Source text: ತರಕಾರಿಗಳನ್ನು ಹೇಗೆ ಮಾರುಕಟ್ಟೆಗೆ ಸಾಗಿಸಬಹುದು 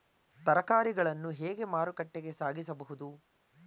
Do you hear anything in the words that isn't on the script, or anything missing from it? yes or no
no